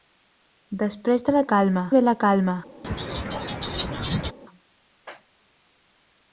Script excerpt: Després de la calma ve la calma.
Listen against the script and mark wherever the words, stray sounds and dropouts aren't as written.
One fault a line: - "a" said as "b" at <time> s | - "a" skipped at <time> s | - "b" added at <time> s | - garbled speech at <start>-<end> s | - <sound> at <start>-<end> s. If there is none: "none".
- laugh at 2.8-4.3 s